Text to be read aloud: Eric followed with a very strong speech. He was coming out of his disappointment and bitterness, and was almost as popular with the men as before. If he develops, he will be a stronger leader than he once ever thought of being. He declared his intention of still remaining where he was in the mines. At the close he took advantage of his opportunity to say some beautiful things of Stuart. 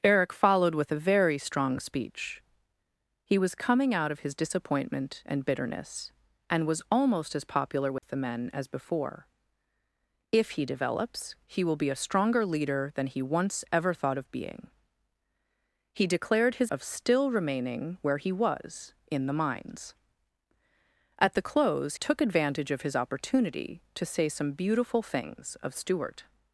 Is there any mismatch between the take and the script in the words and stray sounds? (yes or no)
yes